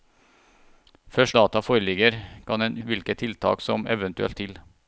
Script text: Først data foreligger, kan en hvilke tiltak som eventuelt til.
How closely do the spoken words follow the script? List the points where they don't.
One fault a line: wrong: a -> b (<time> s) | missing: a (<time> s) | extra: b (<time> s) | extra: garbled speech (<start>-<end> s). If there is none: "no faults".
no faults